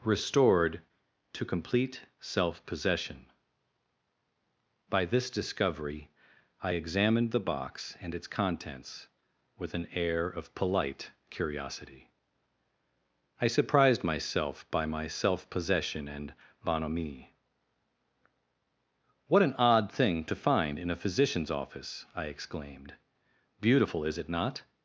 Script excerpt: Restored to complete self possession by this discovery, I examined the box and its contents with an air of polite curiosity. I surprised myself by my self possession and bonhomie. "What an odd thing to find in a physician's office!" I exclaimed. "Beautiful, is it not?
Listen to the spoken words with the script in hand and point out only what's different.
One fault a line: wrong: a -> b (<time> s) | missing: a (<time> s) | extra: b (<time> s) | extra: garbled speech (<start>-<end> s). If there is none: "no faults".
no faults